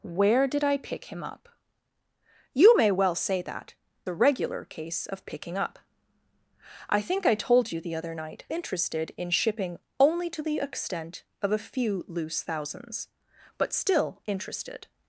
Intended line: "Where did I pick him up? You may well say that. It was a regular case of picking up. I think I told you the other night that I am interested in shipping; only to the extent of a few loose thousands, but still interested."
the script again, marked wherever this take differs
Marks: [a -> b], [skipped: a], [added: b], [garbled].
"Where did I pick him up? You may well say that. [skipped: It was] a regular case of picking up. I think I told you the other night [skipped: that I am] interested in shipping; only to the extent of a few loose thousands, but still interested."